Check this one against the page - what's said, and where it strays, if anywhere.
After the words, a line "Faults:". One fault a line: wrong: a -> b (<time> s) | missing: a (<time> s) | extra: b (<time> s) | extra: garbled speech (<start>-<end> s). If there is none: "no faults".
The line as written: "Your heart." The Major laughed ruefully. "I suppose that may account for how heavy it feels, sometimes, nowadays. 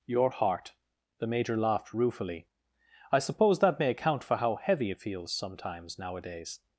"Your heart." The Major laughed ruefully. "I suppose that may account for how heavy it feels, sometimes, nowadays.
Faults:
no faults